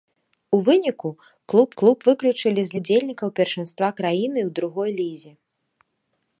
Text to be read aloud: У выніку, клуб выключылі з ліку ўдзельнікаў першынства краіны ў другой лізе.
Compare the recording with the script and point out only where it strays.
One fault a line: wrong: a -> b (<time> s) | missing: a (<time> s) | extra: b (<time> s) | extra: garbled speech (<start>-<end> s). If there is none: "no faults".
extra: клуб (1.8 s)
missing: ліку (2.8 s)